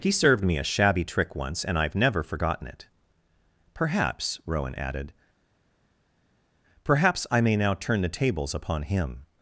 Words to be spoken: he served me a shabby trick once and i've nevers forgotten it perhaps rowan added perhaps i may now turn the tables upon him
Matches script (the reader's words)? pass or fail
fail